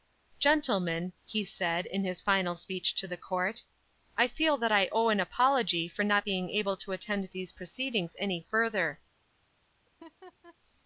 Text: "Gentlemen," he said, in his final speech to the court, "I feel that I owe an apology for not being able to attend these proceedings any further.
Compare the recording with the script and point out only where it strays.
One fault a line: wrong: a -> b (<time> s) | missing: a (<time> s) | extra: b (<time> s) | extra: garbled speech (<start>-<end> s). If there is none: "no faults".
no faults